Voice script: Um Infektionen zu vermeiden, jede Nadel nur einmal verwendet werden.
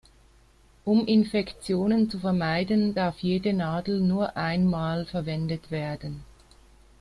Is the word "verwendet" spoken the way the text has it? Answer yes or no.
yes